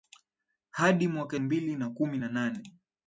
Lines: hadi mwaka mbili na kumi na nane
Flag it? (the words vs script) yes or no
no